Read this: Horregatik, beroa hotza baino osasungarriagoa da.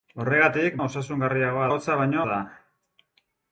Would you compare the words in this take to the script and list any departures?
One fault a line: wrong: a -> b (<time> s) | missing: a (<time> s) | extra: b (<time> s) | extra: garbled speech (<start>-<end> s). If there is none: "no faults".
wrong: beroa -> osasungarriagoa (0.8 s)
missing: osasungarriagoa (2.2 s)